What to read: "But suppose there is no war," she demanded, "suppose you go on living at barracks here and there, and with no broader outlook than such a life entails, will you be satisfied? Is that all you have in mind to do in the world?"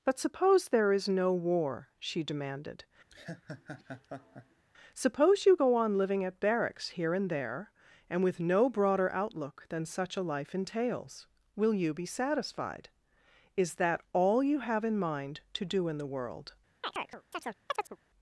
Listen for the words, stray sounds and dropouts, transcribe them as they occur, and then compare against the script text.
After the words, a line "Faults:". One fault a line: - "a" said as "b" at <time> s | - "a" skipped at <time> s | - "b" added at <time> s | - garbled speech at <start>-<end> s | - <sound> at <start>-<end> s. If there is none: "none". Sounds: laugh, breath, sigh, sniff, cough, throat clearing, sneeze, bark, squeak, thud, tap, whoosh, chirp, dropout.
"But suppose there is no war," she demanded, "suppose you go on living at barracks here and there, and with no broader outlook than such a life entails, will you be satisfied? Is that all you have in mind to do in the world?"
Faults:
- laugh at 3.1-4.6 s
- chirp at 16.8-18.0 s